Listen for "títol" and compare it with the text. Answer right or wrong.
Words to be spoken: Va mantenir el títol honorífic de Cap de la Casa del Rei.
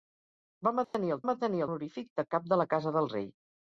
wrong